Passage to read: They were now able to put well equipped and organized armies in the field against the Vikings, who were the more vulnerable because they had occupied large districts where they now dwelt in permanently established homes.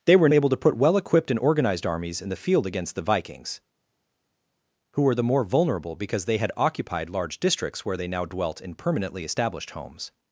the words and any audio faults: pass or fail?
fail